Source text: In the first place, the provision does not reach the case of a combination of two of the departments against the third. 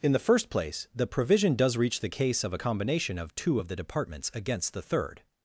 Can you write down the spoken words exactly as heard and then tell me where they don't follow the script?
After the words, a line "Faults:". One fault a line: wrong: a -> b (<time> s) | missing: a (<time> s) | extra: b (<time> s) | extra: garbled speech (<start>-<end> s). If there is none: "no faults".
In the first place, the provision does reach the case of a combination of two of the departments against the third.
Faults:
missing: not (1.8 s)